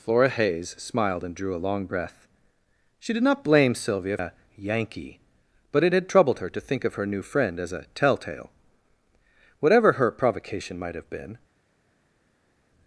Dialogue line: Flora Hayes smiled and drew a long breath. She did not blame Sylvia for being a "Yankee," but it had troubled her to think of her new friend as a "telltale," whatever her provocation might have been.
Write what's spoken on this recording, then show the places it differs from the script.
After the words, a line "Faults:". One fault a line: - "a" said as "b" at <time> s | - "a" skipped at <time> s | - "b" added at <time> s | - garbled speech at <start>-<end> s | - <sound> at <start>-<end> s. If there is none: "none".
Flora Hayes smiled and drew a long breath. She did not blame Sylvia a "Yankee," but it had troubled her to think of her new friend as a "telltale," whatever her provocation might have been.
Faults:
- "for being" skipped at 4.2 s